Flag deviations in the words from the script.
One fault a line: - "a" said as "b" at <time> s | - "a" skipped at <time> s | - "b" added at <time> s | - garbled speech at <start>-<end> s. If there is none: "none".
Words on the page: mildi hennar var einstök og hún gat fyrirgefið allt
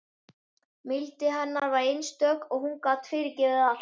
none